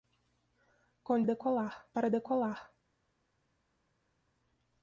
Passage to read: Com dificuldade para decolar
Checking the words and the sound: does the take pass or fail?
fail